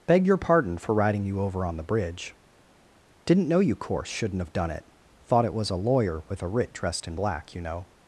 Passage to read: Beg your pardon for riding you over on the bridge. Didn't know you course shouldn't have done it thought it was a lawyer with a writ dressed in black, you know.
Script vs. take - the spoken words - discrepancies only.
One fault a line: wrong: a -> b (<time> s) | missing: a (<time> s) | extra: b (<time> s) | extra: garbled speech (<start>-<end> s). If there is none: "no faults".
no faults